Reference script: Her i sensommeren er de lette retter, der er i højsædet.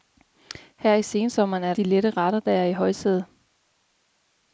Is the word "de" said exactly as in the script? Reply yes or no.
yes